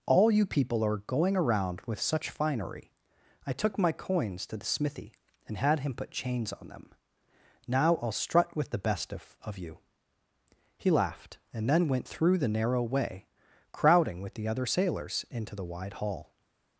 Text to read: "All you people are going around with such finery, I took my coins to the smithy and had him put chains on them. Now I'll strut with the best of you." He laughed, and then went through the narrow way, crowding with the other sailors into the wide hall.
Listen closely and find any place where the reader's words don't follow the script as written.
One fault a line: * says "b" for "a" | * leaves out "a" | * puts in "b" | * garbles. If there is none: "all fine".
* puts in "of"